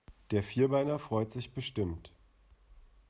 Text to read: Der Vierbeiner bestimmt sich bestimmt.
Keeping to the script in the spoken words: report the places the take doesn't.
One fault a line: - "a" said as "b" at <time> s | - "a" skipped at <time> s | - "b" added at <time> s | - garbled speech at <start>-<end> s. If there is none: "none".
- "bestimmt" said as "freut" at 1.0 s